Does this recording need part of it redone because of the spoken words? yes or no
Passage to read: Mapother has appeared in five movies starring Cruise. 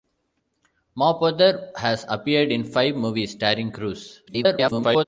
yes